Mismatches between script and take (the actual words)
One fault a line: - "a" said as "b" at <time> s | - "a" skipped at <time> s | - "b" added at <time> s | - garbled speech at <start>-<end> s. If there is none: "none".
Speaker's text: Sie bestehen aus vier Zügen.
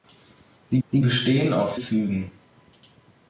- "sie" added at 0.9 s
- "vier" skipped at 1.8 s